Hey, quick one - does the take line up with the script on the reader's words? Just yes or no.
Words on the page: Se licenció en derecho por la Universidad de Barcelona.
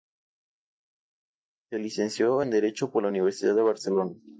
yes